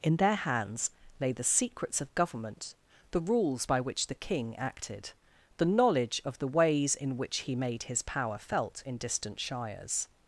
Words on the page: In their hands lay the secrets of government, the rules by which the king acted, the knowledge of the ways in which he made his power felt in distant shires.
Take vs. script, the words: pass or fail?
pass